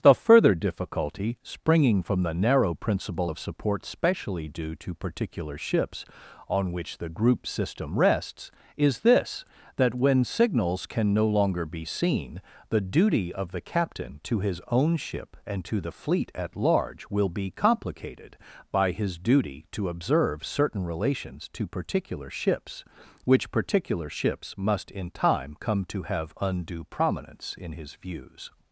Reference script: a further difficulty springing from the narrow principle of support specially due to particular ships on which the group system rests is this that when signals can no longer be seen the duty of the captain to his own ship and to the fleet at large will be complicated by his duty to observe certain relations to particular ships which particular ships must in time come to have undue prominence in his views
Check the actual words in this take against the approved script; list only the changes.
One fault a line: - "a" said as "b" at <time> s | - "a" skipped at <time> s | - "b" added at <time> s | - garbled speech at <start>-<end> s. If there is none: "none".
- "a" said as "the" at 0.0 s